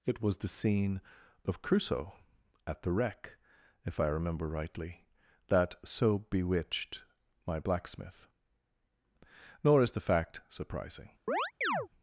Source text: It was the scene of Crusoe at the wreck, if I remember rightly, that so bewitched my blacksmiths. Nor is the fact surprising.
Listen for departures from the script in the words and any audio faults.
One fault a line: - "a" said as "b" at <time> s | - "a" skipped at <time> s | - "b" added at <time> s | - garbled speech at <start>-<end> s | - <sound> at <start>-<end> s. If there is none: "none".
- "blacksmiths" said as "blacksmith" at 7.6 s
- chirp at 11.3-11.9 s